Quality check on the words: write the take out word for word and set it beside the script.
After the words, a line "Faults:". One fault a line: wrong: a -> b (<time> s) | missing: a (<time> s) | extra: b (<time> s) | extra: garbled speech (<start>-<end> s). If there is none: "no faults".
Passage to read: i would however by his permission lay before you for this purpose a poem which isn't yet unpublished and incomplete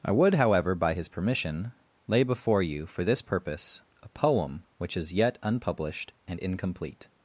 i would however by his permission lay before you for this purpose a poem which is yet unpublished and incomplete
Faults:
wrong: isn't -> is (5.0 s)